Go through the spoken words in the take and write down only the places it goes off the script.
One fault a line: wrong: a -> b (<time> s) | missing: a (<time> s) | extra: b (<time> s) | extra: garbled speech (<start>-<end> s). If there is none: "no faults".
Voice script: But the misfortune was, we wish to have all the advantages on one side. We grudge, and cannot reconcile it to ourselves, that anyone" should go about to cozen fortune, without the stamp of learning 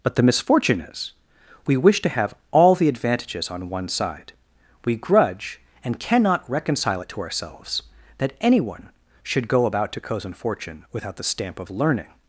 wrong: was -> is (0.8 s)